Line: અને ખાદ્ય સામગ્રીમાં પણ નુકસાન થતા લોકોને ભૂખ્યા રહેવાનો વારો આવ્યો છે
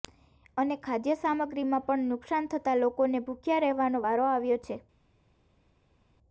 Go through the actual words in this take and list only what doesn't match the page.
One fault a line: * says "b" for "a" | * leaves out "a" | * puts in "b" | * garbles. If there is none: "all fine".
all fine